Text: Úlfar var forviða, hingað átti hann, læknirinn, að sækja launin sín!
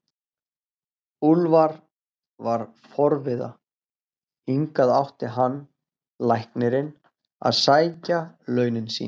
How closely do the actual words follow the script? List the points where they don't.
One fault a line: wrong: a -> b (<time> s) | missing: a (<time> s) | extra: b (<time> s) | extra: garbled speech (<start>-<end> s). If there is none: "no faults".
no faults